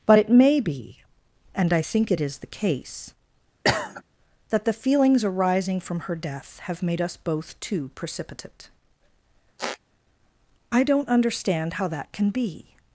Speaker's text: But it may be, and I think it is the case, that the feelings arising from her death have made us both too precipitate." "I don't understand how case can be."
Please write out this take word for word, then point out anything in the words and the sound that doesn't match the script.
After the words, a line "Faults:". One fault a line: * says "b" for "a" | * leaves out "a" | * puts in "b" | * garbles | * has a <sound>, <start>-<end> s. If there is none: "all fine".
But it may be, and I think it is the case, that the feelings arising from her death have made us both too precipitate." "I don't understand how that can be."
Faults:
* has a cough, 3.6-4.0 s
* has a squeak, 9.6-9.8 s
* says "that" for "case"